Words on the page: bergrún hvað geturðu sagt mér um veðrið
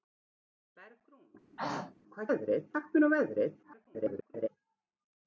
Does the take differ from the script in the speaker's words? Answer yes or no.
yes